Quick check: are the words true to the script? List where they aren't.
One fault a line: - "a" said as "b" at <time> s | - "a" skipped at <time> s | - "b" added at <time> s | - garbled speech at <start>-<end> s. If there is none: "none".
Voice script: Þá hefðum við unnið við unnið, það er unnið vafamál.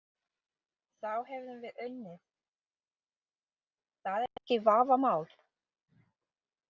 - "við unnið" skipped at 2.2 s
- "unnið" said as "ekki" at 4.4 s